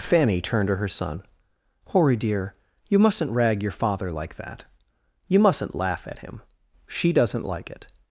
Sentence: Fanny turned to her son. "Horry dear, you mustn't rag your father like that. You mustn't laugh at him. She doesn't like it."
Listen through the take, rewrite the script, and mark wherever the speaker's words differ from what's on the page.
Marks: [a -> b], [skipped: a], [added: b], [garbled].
Fanny turned to her son. "Horry dear, you mustn't rag your father like that. You mustn't laugh at him. She doesn't like it."